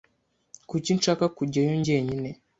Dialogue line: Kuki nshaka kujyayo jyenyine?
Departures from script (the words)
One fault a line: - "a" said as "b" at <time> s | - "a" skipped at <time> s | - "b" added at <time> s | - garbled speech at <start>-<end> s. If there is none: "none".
none